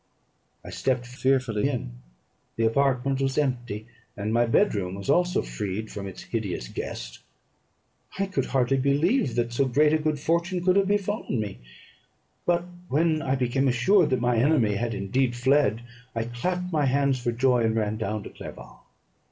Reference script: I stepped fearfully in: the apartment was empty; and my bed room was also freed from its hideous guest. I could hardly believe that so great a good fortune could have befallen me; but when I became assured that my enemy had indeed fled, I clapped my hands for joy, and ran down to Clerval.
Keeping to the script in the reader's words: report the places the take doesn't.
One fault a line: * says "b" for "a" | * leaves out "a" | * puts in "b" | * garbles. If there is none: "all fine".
all fine